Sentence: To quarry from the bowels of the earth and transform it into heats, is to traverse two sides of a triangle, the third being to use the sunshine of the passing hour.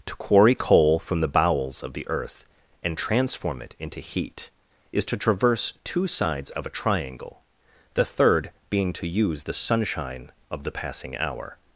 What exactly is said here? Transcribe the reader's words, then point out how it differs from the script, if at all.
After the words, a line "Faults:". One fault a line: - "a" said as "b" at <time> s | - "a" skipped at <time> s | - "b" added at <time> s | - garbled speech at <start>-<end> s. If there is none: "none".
To quarry coal from the bowels of the earth and transform it into heat, is to traverse two sides of a triangle, the third being to use the sunshine of the passing hour.
Faults:
- "coal" added at 0.6 s
- "heats" said as "heat" at 4.0 s